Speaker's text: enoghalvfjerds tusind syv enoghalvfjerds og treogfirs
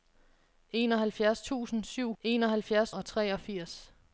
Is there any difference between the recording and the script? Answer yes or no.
no